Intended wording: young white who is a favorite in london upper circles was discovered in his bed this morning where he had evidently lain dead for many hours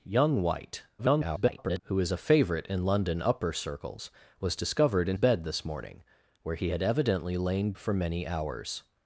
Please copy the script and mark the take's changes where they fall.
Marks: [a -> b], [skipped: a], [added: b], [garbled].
young white [garbled] who is a favorite in london upper circles was discovered in [skipped: his] bed this morning where he had evidently lain [skipped: dead] for many hours